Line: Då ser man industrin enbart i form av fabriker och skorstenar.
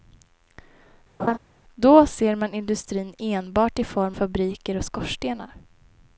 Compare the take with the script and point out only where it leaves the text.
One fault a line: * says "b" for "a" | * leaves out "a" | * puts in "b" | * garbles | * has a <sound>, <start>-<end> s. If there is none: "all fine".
* has a laugh, 1.2-1.4 s
* leaves out "av"